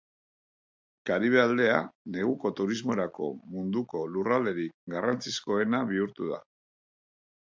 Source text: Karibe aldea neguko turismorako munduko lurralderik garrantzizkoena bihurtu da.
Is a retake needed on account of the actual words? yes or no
no